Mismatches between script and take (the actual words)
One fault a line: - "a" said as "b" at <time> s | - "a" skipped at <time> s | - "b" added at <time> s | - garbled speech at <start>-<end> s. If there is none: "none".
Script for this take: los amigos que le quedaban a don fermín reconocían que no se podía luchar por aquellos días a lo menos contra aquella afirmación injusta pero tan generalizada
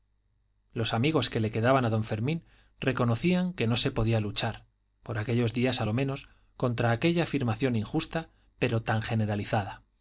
none